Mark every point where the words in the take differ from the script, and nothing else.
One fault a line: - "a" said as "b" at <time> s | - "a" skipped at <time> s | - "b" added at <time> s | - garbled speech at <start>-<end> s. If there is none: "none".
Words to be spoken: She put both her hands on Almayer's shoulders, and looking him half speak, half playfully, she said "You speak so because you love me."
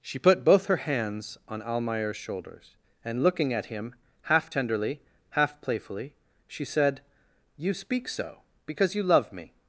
- "at" added at 3.5 s
- "speak" said as "tenderly" at 4.5 s